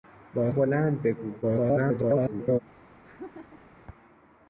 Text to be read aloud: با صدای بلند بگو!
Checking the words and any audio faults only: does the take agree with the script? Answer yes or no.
no